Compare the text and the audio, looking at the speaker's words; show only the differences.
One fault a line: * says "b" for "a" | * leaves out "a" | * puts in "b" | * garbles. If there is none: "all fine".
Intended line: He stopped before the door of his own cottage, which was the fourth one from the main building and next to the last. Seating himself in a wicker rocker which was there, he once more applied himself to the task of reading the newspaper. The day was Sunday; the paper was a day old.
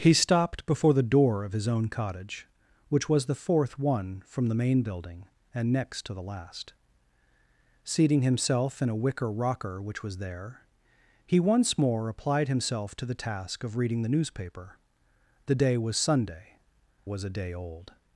* leaves out "the paper"